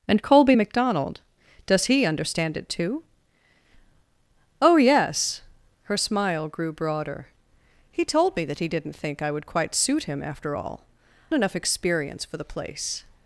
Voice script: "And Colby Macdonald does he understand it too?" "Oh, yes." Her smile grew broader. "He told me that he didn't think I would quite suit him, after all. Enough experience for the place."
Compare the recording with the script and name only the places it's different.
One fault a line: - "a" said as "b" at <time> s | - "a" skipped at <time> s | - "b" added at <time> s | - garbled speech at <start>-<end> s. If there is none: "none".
none